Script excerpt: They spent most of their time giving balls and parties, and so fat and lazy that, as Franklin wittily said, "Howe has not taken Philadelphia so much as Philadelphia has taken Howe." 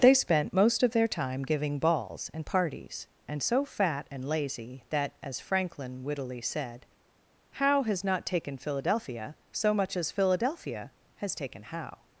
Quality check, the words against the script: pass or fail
pass